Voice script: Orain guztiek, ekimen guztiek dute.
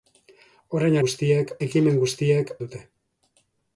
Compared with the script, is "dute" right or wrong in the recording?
right